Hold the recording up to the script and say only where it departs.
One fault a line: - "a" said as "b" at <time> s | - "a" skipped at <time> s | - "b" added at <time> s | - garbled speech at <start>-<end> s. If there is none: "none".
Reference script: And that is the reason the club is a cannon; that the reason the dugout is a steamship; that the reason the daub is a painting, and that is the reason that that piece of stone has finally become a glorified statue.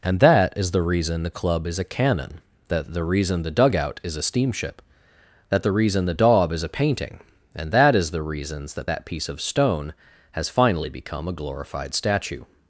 - "reason" said as "reasons" at 8.2 s